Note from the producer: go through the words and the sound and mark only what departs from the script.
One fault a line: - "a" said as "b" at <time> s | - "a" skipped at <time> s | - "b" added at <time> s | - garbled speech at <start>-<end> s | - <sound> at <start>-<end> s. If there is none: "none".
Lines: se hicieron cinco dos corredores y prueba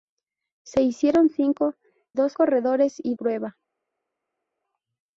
none